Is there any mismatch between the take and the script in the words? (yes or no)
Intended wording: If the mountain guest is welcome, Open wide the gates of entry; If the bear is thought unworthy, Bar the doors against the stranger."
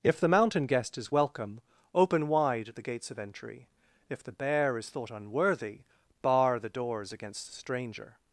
no